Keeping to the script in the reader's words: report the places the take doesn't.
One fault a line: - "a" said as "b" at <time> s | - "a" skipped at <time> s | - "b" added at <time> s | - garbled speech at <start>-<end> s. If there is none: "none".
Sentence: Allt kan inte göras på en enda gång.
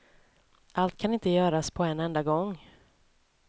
none